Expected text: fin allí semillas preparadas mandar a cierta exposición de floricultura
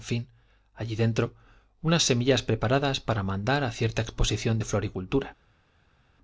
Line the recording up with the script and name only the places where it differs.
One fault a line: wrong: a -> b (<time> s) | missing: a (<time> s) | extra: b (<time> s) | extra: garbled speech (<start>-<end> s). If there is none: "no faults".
extra: dentro unas (0.9 s)
extra: para (3.0 s)